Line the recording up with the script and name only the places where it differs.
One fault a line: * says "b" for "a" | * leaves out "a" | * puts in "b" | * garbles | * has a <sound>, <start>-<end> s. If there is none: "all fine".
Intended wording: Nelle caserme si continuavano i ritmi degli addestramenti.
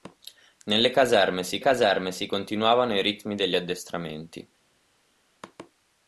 * puts in "caserme si"